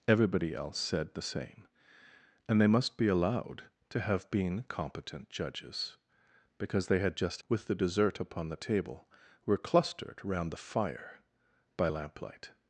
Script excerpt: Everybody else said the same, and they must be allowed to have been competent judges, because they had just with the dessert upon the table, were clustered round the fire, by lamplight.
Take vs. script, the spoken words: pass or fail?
pass